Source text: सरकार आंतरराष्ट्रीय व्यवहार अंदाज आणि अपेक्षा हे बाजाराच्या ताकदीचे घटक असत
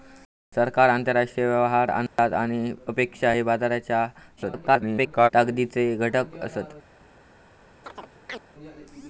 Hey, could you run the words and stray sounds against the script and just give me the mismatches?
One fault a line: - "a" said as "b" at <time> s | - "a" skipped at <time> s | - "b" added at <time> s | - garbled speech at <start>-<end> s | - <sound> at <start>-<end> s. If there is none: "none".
- dropout at 2.1-2.2 s
- garbled speech at 4.4-5.3 s
- chirp at 7.8-8.4 s